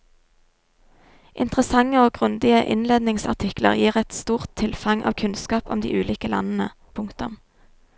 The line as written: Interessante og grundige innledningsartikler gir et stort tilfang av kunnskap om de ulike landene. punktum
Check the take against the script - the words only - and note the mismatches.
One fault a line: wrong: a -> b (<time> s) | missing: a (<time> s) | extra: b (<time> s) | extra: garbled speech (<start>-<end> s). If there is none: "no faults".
no faults